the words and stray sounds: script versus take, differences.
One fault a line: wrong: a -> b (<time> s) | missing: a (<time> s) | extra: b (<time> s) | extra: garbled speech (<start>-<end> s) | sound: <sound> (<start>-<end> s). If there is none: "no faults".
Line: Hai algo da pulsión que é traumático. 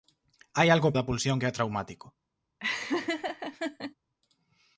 sound: laugh (2.6-3.9 s)